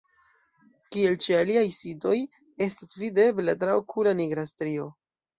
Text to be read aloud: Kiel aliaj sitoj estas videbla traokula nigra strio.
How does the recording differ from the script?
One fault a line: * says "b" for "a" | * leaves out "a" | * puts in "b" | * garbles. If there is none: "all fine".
* puts in "ĉe"